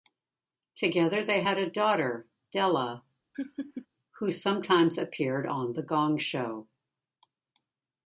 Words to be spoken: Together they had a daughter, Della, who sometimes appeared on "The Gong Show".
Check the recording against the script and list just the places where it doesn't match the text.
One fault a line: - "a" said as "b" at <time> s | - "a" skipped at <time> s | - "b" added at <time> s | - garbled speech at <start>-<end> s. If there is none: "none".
none